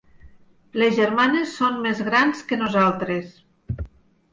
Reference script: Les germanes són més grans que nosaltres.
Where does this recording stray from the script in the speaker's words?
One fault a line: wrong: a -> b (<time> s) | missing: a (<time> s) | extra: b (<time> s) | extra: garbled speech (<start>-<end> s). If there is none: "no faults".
no faults